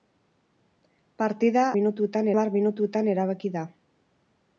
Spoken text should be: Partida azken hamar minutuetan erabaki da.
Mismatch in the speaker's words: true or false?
true